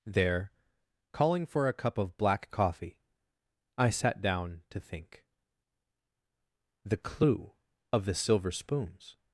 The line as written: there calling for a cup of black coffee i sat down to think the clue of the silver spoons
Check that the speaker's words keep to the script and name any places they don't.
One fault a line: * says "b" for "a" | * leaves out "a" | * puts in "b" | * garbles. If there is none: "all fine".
all fine